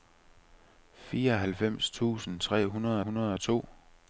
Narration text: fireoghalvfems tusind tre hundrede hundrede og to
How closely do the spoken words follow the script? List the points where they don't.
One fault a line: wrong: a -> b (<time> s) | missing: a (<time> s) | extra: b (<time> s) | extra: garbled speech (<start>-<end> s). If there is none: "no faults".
no faults